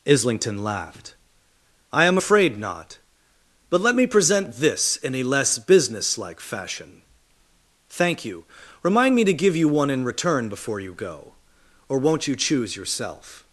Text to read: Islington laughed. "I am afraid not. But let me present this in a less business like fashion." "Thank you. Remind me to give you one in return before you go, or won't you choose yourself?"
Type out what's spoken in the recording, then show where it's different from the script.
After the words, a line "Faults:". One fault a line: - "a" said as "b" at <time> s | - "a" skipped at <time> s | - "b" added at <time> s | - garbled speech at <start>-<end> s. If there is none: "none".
Islington laughed. "I am afraid not. But let me present this in a less business like fashion." "Thank you. Remind me to give you one in return before you go, or won't you choose yourself?"
Faults:
none